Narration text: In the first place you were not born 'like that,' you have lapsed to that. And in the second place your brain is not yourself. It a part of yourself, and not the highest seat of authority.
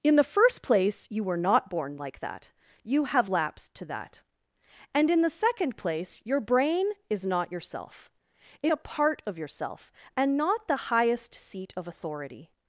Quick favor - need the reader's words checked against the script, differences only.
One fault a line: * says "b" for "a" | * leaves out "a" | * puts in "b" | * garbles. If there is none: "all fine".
all fine